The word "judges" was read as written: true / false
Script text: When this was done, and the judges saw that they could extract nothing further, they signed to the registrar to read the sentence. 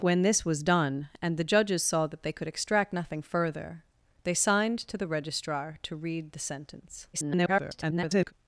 true